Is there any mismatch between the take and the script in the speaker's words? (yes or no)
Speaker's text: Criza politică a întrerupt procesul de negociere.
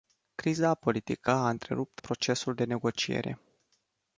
no